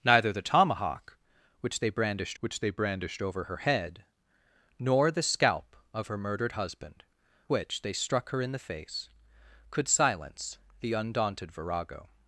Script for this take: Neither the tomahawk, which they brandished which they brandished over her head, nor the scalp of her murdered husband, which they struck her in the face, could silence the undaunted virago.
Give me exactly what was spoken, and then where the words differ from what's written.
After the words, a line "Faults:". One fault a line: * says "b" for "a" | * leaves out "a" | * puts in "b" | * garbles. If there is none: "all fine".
Neither the tomahawk, which they brandished which they brandished over her head, nor the scalp of her murdered husband, which they struck her in the face, could silence the undaunted virago.
Faults:
all fine